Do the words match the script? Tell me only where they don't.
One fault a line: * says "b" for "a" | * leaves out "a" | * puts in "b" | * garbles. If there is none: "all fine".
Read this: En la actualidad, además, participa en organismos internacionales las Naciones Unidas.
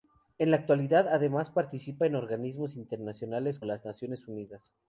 all fine